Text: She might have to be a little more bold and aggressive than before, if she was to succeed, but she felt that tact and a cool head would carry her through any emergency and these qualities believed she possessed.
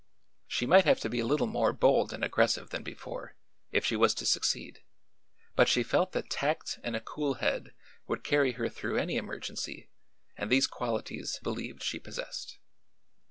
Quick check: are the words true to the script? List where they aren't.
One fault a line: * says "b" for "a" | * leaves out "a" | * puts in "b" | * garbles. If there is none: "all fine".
all fine